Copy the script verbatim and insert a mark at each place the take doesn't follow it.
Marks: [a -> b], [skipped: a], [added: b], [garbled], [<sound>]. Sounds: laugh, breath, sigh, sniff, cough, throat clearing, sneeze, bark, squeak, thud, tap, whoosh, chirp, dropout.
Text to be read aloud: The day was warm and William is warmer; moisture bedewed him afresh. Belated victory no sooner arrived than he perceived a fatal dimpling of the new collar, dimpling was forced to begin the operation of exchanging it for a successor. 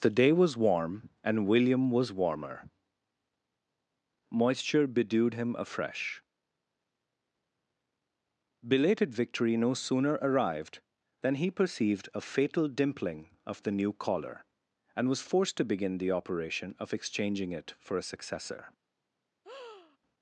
The day was warm and William [is -> was] warmer; moisture bedewed him afresh. Belated victory no sooner arrived than he perceived a fatal dimpling of the new collar, [dimpling -> and] was forced to begin the operation of exchanging it for a successor. [breath]